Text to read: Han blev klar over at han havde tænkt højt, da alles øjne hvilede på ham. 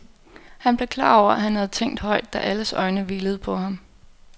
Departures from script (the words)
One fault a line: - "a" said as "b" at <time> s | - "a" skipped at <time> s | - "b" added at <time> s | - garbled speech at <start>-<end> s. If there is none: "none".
none